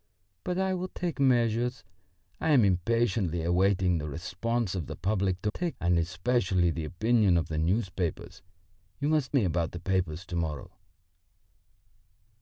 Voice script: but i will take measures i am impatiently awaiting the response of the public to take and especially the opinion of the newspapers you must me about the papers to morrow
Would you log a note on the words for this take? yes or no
no